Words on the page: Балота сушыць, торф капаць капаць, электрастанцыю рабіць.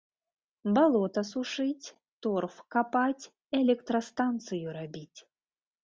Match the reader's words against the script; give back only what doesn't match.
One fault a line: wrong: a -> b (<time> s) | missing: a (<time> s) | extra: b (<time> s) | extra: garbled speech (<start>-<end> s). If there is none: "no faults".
missing: капаць (3.2 s)